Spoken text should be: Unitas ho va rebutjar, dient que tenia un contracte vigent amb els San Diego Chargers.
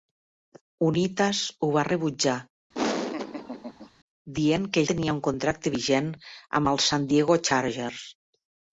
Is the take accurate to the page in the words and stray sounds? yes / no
no